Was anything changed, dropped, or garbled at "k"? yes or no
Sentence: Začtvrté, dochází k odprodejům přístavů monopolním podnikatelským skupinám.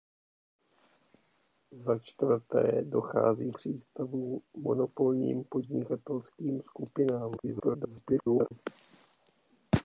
yes